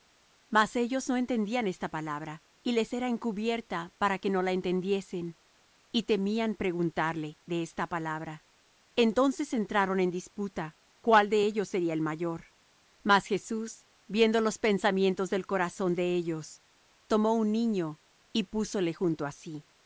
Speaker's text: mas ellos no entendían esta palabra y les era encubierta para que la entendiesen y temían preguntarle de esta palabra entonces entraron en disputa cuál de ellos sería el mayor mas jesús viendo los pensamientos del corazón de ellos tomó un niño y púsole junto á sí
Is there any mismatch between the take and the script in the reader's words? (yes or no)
yes